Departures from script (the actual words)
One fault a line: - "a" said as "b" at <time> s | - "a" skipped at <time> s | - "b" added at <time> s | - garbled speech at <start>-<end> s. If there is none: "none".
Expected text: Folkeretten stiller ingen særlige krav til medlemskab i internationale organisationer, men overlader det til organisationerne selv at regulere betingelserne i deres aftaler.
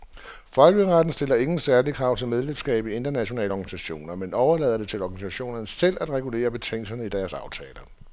none